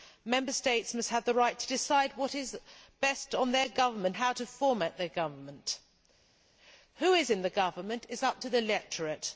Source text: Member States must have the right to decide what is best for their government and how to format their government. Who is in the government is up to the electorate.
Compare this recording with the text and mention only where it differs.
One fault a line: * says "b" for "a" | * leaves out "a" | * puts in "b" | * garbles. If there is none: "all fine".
* leaves out "and"